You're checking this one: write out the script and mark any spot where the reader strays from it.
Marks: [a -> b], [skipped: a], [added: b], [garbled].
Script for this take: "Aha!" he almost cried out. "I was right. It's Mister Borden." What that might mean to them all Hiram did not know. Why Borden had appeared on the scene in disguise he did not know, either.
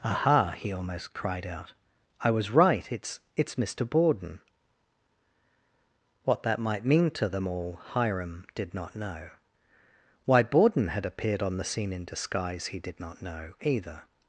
"Aha!" he almost cried out. "I was right. It's [added: It's] Mister Borden." What that might mean to them all Hiram did not know. Why Borden had appeared on the scene in disguise he did not know, either.